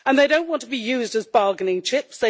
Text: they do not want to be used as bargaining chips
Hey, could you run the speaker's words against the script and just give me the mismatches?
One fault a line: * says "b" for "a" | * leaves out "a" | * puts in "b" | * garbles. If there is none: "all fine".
all fine